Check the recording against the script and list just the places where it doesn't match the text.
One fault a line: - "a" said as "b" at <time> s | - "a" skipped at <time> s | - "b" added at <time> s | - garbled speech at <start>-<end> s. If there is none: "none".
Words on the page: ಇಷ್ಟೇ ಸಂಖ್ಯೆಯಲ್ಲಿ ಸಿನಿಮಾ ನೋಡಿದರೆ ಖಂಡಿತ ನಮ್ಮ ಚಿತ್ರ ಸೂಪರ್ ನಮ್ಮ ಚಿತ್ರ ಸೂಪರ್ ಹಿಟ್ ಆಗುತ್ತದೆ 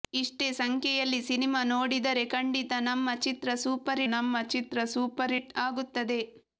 none